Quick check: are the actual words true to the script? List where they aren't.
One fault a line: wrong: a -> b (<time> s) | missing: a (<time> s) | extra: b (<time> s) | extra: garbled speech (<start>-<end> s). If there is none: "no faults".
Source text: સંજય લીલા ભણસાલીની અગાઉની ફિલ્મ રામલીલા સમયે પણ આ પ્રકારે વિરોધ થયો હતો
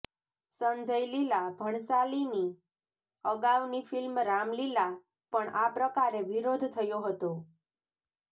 missing: સમયે (4.9 s)